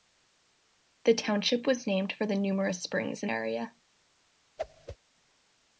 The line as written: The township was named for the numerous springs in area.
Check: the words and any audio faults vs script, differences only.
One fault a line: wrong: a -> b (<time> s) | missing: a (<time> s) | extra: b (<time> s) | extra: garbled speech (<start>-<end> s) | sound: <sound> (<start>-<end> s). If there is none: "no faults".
sound: whoosh (4.6-5.0 s)